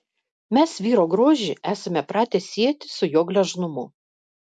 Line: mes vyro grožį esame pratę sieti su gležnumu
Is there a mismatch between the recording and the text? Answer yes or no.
yes